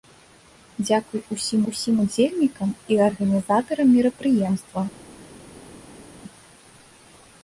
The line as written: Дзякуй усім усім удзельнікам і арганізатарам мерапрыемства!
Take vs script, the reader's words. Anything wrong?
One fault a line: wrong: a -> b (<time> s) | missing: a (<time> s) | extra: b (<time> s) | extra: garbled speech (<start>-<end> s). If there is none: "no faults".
no faults